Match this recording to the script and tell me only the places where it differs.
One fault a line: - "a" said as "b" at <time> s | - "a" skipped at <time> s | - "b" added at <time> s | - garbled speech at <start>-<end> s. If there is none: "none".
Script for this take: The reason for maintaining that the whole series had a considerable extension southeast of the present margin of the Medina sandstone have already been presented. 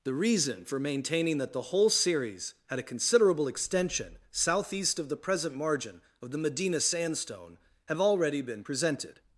none